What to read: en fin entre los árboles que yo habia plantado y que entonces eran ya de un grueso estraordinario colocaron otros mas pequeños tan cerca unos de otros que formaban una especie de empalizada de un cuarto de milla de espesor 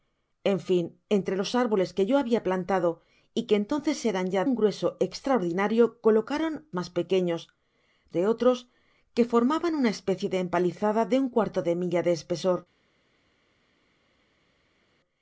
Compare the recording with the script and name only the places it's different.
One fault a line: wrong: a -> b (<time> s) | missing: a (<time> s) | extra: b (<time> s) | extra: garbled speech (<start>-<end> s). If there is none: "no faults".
missing: de (4.4 s)
missing: otros (6.5 s)
missing: tan cerca unos (7.4 s)